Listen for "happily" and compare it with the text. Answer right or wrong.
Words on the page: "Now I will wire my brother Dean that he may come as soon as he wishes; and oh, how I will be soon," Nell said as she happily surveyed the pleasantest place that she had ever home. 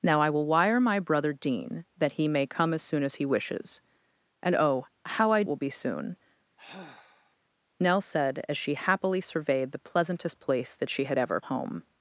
right